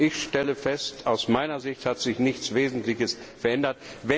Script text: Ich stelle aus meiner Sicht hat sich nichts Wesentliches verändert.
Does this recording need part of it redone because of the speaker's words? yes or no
yes